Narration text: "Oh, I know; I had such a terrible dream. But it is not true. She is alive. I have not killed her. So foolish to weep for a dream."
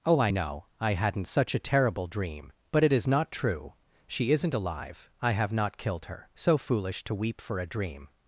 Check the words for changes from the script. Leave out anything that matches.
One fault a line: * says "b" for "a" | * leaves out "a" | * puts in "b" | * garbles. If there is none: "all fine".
* says "hadn't" for "had"
* says "isn't" for "is"